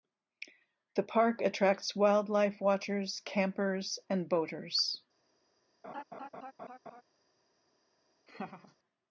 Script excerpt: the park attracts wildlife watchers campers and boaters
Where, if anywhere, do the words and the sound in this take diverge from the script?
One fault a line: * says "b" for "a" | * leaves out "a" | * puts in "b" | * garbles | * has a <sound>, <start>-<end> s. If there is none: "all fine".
* has a laugh, 5.8-7.0 s
* has a laugh, 8.3-8.8 s